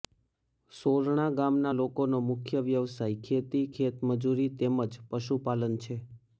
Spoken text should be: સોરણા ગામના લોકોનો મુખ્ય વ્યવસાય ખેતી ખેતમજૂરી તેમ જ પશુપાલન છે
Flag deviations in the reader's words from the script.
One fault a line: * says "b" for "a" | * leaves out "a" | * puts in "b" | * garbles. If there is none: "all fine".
all fine